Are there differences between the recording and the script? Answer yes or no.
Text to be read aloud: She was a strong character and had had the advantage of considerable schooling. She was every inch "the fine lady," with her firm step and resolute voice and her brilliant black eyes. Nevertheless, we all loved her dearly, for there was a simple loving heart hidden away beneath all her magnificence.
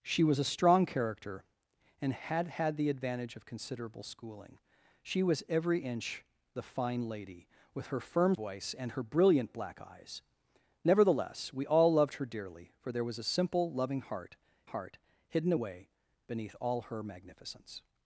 yes